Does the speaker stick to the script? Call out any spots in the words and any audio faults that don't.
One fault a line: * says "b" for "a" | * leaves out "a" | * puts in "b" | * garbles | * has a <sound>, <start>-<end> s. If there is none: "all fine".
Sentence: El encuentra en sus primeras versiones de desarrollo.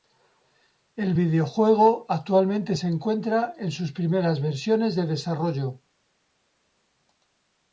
* puts in "videojuego actualmente se"